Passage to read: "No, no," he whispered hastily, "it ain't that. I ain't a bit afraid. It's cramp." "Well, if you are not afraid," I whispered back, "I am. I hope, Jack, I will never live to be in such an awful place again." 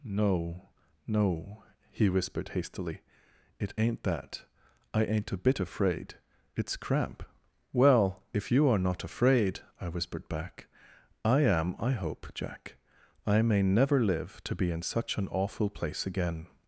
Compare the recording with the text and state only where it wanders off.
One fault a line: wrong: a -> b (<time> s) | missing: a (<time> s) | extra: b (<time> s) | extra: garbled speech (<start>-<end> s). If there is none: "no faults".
wrong: will -> may (13.4 s)